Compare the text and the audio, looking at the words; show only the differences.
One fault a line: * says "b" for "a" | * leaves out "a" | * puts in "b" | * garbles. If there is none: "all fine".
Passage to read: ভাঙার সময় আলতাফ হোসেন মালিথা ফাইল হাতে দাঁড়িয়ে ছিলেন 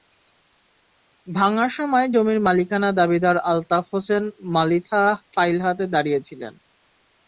* puts in "জমির মালিকানা দাবিদার"